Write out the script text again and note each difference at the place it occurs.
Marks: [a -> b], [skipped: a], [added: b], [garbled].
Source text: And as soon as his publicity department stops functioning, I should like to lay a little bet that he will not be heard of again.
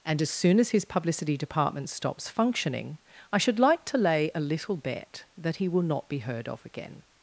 And as soon as his publicity department stops functioning, I should like to lay a little bet that he will not be heard of again.